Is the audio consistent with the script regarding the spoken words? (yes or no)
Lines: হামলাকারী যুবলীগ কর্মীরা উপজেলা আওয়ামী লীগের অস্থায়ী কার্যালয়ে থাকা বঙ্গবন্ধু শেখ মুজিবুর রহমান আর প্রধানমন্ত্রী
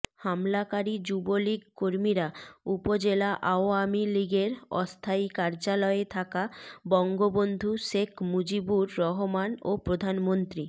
no